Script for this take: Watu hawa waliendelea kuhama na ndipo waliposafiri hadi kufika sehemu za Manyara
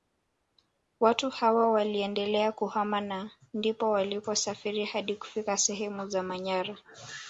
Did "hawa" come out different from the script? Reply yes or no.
no